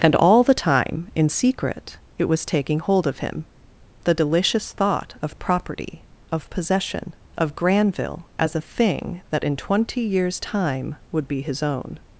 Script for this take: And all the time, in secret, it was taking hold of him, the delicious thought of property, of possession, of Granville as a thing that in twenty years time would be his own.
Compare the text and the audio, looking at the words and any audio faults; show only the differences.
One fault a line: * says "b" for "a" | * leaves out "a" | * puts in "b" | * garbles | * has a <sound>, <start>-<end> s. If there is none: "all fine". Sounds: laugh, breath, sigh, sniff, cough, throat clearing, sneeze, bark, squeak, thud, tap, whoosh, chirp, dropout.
all fine